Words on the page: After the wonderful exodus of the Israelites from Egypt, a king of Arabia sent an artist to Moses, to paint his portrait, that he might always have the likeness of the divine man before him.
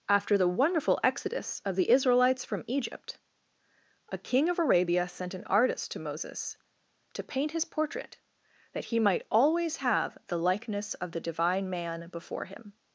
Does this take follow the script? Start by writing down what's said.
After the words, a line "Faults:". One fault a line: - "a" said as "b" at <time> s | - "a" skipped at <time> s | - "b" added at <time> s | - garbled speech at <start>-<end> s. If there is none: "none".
After the wonderful exodus of the Israelites from Egypt, a king of Arabia sent an artist to Moses, to paint his portrait, that he might always have the likeness of the divine man before him.
Faults:
none